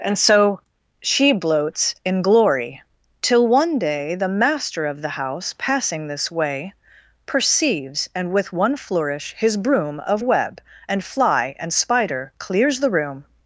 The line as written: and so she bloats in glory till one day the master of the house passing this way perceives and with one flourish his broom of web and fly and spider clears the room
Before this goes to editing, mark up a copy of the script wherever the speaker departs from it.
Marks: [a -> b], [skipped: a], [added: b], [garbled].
and so she bloats in glory till one day the master of the house passing this way perceives and with one flourish his broom of web and fly and spider clears the room